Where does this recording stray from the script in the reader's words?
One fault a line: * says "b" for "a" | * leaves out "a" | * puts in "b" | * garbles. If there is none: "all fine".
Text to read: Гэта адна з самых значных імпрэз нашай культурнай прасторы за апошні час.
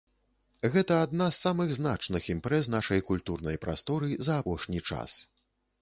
all fine